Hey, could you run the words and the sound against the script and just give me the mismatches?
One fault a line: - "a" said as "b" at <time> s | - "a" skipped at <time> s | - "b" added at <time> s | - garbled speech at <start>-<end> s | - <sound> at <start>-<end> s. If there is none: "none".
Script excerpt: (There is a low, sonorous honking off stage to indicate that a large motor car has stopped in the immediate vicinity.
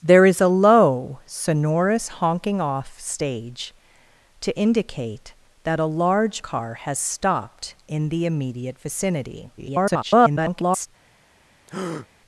- "motor" skipped at 6.4 s
- garbled speech at 9.6-10.9 s
- breath at 11.7-12.1 s